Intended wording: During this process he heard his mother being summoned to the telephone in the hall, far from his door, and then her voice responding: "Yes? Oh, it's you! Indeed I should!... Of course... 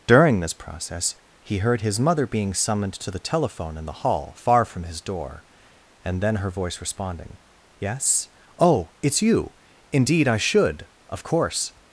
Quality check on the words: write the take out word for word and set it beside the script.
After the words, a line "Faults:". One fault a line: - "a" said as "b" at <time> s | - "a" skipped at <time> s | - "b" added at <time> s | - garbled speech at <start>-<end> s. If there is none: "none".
During this process he heard his mother being summoned to the telephone in the hall, far from his door, and then her voice responding: "Yes? Oh, it's you! Indeed I should!... Of course...
Faults:
none